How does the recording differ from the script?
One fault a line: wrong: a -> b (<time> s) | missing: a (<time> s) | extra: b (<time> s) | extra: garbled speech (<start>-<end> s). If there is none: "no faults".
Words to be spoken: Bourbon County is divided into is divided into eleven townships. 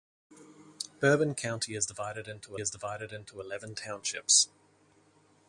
no faults